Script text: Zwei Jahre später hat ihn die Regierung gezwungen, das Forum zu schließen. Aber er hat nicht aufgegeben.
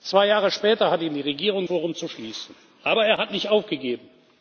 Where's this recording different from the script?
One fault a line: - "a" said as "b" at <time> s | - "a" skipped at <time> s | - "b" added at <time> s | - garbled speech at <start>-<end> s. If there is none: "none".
- "gezwungen das" skipped at 1.7 s